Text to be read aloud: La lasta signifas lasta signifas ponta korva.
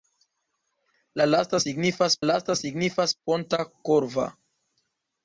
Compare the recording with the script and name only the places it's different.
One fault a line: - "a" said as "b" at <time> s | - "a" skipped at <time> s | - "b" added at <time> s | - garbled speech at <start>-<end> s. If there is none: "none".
none